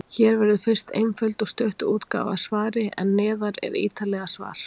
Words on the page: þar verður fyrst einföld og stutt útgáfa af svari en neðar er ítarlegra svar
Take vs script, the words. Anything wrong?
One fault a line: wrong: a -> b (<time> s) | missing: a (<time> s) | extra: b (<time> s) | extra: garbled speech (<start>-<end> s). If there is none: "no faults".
wrong: þar -> hér (0.1 s)